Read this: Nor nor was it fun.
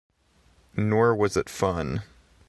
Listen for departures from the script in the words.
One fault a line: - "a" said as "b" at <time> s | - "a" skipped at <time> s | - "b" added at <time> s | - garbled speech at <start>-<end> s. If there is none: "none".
- "nor" skipped at 1.1 s